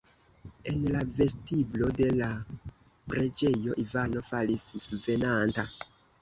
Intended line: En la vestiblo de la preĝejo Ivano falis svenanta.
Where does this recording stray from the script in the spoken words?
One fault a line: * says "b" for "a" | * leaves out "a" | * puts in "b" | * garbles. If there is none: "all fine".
all fine